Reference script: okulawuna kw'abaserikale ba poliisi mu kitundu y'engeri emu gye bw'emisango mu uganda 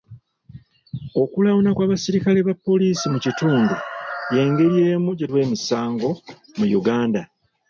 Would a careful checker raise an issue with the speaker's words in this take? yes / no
no